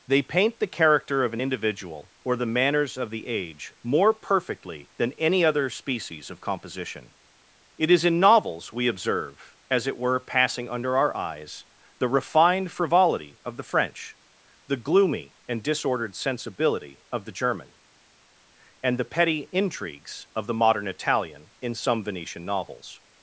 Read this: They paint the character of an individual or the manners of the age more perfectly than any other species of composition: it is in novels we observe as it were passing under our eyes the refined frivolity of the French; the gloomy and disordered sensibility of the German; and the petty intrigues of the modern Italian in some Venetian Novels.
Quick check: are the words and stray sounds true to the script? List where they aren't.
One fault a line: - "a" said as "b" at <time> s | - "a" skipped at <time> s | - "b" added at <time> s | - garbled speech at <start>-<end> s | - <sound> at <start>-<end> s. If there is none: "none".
none